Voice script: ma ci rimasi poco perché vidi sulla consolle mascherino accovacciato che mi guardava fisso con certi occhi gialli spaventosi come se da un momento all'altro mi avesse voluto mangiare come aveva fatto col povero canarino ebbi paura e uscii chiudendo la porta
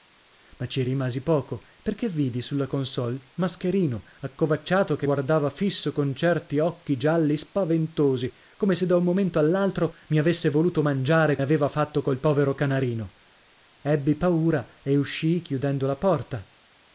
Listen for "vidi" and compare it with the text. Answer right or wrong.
right